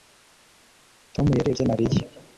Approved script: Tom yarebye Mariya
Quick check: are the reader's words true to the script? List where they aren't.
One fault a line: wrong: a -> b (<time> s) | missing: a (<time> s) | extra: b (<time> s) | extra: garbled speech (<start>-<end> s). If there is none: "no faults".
no faults